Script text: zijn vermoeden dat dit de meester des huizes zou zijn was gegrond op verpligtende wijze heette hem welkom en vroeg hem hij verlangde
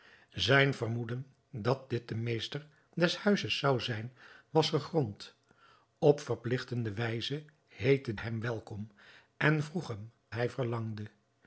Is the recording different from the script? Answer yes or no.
no